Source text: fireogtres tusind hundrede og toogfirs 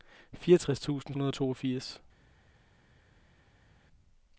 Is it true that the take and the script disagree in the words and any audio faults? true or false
false